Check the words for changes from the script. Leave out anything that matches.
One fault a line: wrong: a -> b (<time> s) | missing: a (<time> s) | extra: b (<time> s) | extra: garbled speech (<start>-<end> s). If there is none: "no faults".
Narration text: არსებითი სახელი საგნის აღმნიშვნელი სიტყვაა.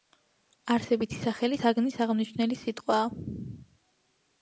no faults